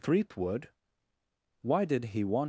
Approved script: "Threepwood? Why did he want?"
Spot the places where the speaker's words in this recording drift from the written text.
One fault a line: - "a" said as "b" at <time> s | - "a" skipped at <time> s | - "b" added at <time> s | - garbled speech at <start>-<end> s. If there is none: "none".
none